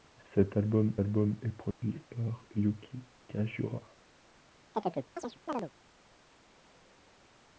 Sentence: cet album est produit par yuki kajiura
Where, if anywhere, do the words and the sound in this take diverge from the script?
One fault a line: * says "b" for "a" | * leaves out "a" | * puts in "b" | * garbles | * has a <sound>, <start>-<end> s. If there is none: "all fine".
* puts in "album"
* has a dropout, 1.7-1.8 s
* has a chirp, 4.7-5.7 s